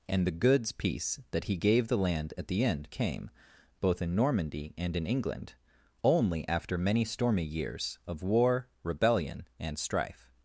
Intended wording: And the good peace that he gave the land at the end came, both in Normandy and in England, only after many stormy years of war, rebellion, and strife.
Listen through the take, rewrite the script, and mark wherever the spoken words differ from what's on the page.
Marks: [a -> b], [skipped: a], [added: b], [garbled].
And the [good -> goods] peace that he gave the land at the end came, both in Normandy and in England, only after many stormy years of war, rebellion, and strife.